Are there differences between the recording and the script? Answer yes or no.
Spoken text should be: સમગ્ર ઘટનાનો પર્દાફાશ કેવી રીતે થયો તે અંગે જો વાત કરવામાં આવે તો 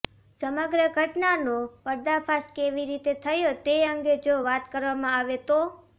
no